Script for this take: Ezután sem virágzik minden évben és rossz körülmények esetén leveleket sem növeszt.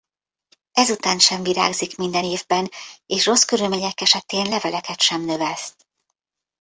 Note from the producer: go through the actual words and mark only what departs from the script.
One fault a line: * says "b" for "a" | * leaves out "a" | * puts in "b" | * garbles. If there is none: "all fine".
all fine